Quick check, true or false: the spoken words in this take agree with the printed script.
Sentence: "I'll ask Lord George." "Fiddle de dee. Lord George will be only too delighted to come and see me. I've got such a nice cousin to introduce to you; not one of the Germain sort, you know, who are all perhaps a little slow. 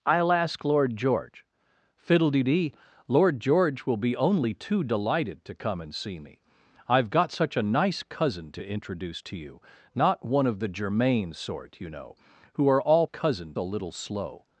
false